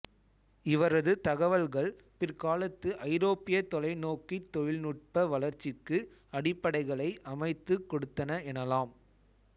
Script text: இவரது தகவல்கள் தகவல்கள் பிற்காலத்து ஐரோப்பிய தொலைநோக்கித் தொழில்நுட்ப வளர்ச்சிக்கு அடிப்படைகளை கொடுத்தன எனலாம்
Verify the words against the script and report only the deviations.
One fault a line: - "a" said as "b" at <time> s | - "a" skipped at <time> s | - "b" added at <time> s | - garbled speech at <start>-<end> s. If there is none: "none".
- "தகவல்கள்" skipped at 1.9 s
- "அமைத்துக்" added at 7.3 s